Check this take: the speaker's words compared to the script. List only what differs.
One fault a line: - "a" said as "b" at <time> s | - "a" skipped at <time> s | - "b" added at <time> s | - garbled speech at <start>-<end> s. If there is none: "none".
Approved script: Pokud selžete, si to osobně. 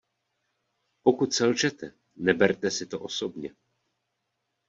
- "neberte" added at 2.2 s